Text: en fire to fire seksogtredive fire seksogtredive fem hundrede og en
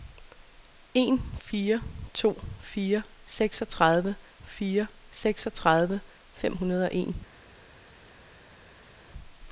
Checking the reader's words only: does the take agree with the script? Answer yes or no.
yes